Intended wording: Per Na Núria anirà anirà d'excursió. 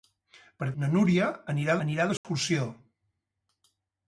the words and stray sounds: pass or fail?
fail